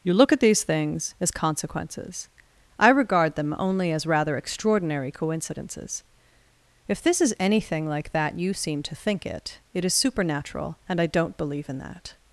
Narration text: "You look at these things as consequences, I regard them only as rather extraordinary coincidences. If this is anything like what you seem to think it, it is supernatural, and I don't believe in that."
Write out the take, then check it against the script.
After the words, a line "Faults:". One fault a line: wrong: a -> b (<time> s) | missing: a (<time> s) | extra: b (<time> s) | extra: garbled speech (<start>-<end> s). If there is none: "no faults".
"You look at these things as consequences, I regard them only as rather extraordinary coincidences. If this is anything like that you seem to think it, it is supernatural, and I don't believe in that."
Faults:
wrong: what -> that (8.1 s)